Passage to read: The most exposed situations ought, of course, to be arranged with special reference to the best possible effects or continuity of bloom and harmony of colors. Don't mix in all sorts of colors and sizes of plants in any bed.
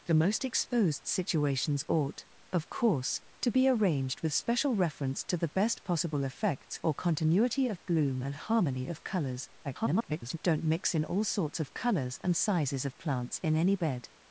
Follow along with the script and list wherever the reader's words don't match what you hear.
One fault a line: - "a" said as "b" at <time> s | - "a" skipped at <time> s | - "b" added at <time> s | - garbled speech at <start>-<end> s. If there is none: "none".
- garbled speech at 9.6-10.4 s